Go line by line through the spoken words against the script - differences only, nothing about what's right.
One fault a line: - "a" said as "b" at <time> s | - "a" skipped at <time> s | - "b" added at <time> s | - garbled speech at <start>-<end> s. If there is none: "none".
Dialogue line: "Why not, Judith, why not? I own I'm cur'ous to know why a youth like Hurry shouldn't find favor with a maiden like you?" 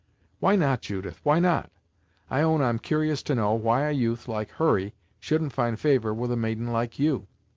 none